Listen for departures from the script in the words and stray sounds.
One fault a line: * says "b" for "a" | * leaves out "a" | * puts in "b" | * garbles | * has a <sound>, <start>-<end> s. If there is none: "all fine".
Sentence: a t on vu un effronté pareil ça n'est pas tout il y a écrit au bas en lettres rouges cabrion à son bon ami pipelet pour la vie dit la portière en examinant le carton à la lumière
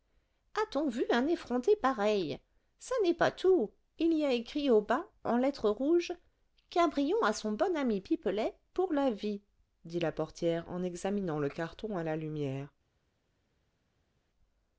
all fine